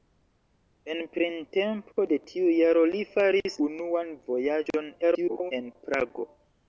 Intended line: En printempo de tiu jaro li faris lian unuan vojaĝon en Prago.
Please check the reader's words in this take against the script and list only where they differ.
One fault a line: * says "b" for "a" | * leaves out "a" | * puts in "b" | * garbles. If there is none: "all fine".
* leaves out "lian"
* garbles